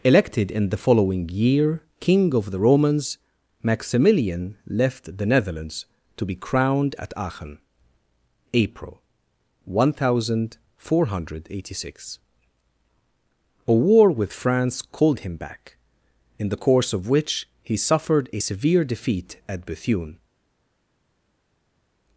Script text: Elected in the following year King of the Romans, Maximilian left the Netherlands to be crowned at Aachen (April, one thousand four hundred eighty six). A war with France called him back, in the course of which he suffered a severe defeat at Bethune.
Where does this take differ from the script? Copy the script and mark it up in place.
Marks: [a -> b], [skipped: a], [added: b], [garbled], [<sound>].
Elected in the following year King of the Romans, Maximilian left the Netherlands to be crowned at Aachen (April, one thousand four hundred eighty six). A war with France called him back, in the course of which he suffered a severe defeat at Bethune.